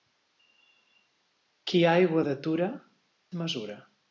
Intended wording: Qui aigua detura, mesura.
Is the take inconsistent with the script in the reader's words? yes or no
no